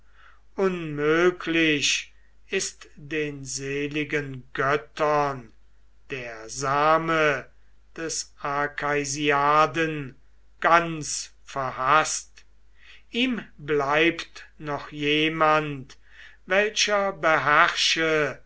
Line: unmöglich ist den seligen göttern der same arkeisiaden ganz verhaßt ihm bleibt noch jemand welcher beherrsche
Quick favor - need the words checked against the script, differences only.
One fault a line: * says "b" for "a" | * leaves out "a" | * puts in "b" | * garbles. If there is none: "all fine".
* puts in "des"